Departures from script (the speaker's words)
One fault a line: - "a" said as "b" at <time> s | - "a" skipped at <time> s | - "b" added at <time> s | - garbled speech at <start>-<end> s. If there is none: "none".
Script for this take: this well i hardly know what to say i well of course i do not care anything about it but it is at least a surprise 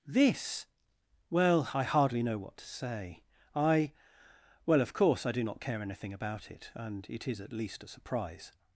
- "but" said as "and" at 6.8 s